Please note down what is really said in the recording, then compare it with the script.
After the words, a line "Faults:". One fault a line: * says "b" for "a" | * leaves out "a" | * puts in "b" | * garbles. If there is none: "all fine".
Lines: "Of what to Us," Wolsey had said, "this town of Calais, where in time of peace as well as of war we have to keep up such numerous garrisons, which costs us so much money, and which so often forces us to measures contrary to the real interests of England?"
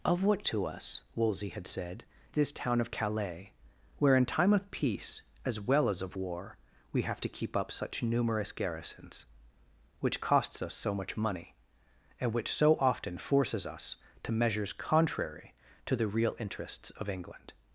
"Of what to Us," Wolsey had said, "this town of Calais, where in time of peace as well as of war we have to keep up such numerous garrisons, which costs us so much money, and which so often forces us to measures contrary to the real interests of England?"
Faults:
all fine